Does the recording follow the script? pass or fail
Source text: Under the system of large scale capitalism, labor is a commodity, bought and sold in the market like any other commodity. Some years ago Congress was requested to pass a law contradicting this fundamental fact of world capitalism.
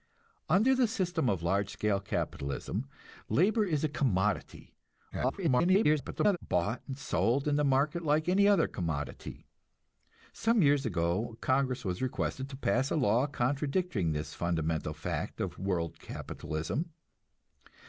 fail